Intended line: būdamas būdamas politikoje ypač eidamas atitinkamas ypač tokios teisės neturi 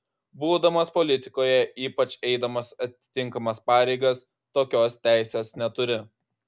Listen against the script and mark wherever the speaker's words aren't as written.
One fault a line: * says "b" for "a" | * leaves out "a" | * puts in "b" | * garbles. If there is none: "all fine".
* leaves out "būdamas"
* says "pareigas" for "ypač"